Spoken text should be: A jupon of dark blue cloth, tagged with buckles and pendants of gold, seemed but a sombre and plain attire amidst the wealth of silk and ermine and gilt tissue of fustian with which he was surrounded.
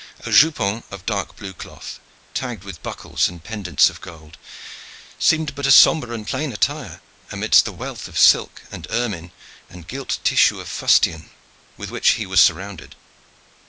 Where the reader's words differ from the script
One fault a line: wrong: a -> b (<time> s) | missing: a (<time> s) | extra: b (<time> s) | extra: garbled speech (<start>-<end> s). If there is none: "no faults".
no faults